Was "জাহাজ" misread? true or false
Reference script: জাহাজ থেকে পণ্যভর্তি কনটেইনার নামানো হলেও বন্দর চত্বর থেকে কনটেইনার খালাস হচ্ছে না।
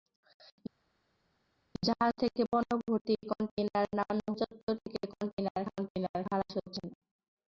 false